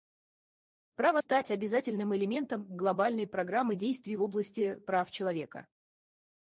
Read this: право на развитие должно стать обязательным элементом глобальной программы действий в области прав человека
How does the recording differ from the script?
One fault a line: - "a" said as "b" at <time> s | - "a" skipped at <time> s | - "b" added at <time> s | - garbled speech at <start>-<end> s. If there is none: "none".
- "на развитие должно" skipped at 1.2 s